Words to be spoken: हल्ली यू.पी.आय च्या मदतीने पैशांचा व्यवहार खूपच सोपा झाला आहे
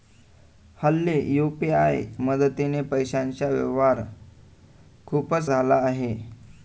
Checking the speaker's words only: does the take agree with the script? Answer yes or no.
no